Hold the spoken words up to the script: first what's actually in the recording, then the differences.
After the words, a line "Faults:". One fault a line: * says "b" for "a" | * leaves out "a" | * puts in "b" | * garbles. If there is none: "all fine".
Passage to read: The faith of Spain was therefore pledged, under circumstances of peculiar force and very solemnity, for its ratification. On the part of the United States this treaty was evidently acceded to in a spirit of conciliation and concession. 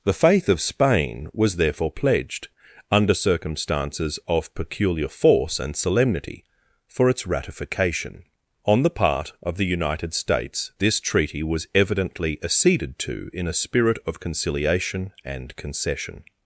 The faith of Spain was therefore pledged, under circumstances of peculiar force and solemnity, for its ratification. On the part of the United States this treaty was evidently acceded to in a spirit of conciliation and concession.
Faults:
* leaves out "very"